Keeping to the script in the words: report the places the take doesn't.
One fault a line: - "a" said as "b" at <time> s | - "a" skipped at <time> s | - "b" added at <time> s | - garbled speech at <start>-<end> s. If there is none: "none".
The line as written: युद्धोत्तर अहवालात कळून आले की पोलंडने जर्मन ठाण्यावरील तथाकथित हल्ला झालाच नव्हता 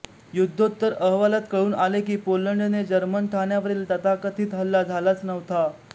none